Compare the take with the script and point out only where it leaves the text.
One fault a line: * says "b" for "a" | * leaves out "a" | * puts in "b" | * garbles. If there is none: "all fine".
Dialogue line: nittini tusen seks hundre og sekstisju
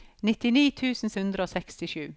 * leaves out "seks"